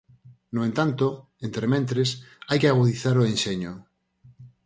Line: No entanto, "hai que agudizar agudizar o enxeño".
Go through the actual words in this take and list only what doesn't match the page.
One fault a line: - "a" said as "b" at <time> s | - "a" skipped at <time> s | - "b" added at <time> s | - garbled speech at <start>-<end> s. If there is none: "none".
- "entrementres" added at 1.5 s
- "agudizar" skipped at 3.2 s